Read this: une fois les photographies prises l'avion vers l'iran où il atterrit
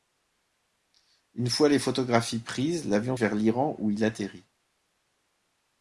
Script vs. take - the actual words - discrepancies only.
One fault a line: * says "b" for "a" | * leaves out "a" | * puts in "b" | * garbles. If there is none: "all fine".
all fine